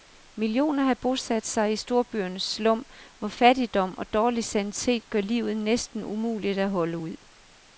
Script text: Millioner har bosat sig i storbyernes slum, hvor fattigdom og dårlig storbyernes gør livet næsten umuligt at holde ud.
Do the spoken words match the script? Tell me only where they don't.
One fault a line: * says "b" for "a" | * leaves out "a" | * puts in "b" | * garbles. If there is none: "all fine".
* says "sanitet" for "storbyernes"